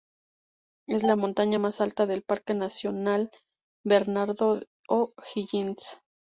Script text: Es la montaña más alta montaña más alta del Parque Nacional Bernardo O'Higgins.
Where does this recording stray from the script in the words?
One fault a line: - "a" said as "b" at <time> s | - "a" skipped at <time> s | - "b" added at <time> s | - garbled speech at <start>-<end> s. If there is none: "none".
- "montaña más alta" skipped at 2.0 s